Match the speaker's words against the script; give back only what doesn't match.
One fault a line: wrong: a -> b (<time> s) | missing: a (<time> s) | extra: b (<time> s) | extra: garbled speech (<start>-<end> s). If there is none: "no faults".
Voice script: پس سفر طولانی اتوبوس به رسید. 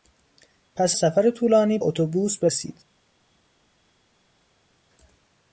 no faults